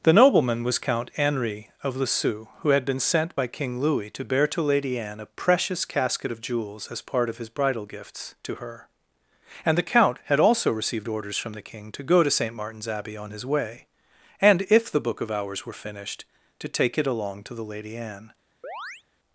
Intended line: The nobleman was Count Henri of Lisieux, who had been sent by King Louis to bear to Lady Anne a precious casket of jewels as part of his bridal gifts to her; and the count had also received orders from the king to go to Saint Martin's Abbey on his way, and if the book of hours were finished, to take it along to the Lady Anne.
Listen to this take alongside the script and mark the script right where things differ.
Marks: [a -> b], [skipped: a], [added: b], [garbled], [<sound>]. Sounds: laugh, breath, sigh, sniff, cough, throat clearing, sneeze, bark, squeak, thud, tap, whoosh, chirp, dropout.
The nobleman was Count Henri of Lisieux, who had been sent by King Louis to bear to Lady Anne a precious casket of jewels as part of his bridal gifts to her; and the count had also received orders from the king to go to Saint Martin's Abbey on his way, and if the book of hours were finished, to take it along to the Lady Anne. [chirp]